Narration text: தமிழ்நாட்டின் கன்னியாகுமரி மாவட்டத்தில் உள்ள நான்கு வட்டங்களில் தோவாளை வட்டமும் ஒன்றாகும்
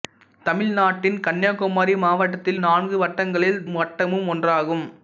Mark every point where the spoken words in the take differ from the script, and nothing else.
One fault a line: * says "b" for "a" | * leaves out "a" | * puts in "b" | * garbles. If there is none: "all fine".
* leaves out "உள்ள"
* leaves out "தோவாளை"